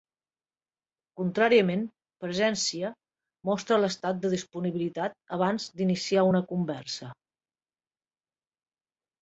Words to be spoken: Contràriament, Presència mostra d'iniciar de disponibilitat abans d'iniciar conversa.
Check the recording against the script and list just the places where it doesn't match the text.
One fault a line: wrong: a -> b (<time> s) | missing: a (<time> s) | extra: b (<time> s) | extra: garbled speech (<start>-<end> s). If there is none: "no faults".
wrong: d'iniciar -> l'estat (3.8 s)
extra: una (6.3 s)